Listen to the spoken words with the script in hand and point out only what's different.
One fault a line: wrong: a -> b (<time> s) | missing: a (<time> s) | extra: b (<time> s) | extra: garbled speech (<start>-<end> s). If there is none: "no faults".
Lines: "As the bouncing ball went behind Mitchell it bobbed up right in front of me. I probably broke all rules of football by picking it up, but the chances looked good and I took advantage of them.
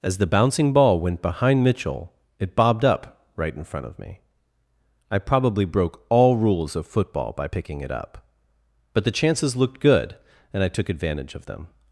no faults